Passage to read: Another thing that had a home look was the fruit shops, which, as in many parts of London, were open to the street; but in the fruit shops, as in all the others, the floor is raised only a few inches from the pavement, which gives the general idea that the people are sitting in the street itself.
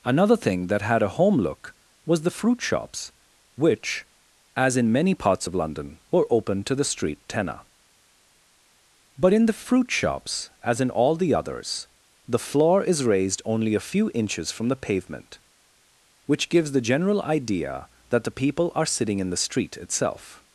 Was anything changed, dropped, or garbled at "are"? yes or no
no